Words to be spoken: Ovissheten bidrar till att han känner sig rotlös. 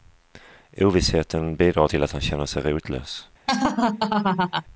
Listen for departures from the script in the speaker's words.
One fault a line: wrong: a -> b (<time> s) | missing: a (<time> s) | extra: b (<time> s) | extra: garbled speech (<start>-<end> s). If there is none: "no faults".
no faults